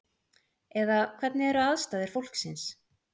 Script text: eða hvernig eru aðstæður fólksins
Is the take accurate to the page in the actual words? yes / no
yes